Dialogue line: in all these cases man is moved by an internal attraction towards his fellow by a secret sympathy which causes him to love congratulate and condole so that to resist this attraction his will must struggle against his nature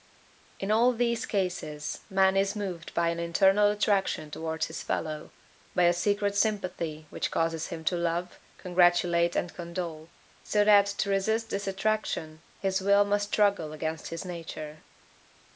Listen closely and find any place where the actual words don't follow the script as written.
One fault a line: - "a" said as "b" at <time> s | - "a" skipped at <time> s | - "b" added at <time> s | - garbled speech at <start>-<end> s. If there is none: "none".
none